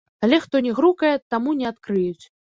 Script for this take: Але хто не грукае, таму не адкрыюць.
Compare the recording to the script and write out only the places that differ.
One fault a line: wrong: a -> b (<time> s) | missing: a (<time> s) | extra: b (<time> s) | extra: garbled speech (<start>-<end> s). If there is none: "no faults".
no faults